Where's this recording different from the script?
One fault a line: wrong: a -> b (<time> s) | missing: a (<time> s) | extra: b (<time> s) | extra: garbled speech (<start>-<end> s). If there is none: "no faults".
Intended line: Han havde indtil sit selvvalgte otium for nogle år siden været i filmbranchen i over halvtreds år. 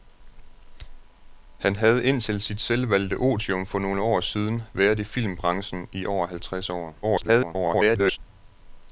extra: garbled speech (7.0-8.2 s)